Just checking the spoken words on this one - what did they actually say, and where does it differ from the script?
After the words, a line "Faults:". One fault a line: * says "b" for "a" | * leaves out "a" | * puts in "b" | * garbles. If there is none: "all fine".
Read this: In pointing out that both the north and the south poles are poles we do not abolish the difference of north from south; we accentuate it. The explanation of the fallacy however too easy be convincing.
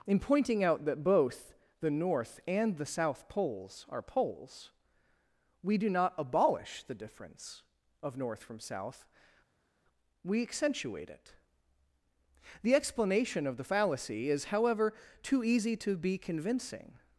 In pointing out that both the north and the south poles are poles we do not abolish the difference of north from south; we accentuate it. The explanation of the fallacy is however too easy to be convincing.
Faults:
* puts in "is"
* puts in "to"